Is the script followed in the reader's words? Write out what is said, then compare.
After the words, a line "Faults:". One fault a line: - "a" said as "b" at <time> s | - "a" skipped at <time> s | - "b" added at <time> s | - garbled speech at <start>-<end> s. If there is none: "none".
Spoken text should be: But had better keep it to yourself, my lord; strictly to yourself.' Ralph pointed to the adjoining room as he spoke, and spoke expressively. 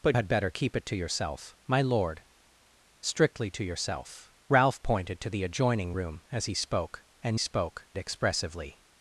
But had better keep it to yourself, my lord; strictly to yourself.' Ralph pointed to the adjoining room as he spoke, and spoke expressively.
Faults:
none